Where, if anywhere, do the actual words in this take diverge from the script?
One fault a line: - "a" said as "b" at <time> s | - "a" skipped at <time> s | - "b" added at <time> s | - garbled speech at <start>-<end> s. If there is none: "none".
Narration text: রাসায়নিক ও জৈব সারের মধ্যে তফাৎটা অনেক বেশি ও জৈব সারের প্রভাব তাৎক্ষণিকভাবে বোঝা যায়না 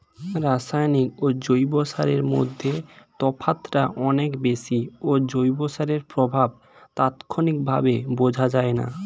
none